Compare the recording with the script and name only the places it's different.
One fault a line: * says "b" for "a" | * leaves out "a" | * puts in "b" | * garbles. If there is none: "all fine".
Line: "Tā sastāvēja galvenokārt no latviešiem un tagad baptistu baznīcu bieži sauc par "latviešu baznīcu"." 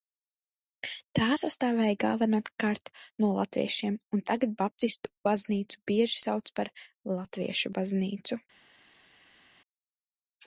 all fine